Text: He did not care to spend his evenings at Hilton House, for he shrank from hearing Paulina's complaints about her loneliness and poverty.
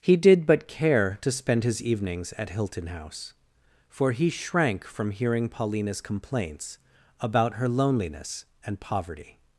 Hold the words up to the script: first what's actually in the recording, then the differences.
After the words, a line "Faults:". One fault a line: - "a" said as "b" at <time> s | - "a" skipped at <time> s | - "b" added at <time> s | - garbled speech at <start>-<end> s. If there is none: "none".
He did but care to spend his evenings at Hilton House, for he shrank from hearing Paulina's complaints about her loneliness and poverty.
Faults:
- "not" said as "but" at 0.5 s